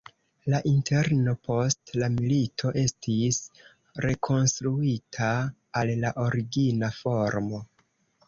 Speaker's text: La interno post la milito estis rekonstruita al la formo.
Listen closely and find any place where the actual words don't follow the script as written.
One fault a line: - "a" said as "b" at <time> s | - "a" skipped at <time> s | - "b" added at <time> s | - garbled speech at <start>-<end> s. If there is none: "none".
- "origina" added at 6.3 s